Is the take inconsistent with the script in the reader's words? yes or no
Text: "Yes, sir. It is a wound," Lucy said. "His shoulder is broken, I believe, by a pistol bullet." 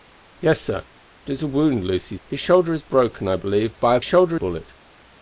yes